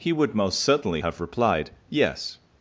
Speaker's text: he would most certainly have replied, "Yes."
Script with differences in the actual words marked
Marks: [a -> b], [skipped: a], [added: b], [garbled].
he would most certainly have replied, "Yes."